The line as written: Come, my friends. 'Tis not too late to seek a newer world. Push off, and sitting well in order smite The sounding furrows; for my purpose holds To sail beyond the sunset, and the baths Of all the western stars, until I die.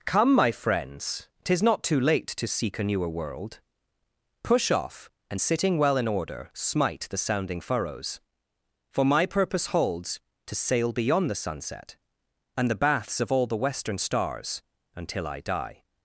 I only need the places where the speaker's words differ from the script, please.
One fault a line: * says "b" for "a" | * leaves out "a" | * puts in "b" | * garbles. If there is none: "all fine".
all fine